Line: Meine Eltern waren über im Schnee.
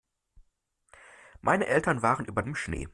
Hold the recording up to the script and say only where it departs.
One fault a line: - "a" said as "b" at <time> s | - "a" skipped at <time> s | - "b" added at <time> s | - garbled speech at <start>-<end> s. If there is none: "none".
none